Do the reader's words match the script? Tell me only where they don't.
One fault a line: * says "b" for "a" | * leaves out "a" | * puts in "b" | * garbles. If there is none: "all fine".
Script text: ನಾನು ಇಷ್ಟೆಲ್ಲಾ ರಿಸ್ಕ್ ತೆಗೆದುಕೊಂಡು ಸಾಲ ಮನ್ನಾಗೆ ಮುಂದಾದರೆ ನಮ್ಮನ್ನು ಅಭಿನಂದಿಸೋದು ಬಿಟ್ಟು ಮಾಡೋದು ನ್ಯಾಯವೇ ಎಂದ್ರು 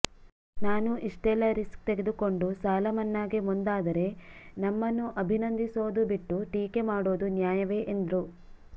* puts in "ಟೀಕೆ"